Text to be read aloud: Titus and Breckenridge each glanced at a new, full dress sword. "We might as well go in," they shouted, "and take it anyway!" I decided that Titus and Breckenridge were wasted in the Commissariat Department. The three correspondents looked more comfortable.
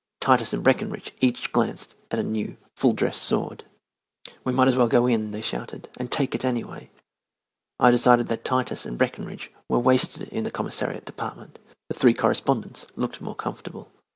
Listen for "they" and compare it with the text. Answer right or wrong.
right